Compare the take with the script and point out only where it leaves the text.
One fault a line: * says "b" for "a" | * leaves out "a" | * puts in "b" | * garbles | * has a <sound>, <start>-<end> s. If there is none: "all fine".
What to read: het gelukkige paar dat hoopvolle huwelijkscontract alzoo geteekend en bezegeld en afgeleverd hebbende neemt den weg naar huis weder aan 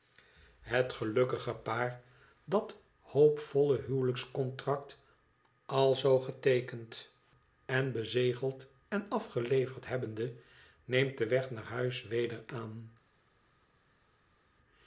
all fine